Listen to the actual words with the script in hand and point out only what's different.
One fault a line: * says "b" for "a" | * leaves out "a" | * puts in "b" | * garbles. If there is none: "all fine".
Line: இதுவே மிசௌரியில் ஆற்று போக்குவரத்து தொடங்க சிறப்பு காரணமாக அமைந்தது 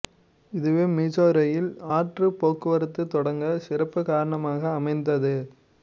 all fine